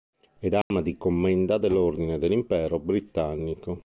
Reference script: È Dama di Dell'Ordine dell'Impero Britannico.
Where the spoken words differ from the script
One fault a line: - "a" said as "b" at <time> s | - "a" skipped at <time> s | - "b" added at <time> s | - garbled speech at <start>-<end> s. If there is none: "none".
- "Commenda" added at 1.0 s